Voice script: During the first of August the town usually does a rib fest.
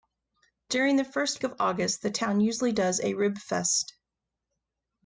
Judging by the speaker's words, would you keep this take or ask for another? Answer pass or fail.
pass